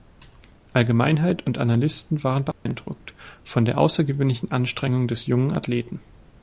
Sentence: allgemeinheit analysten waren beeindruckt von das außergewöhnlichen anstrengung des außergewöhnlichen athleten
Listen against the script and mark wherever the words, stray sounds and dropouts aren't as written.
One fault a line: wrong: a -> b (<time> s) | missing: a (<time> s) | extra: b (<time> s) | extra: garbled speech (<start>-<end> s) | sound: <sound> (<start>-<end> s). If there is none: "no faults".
extra: und (1.4 s)
sound: dropout (2.5-2.7 s)
wrong: das -> der (3.6 s)
wrong: außergewöhnlichen -> jungen (5.3 s)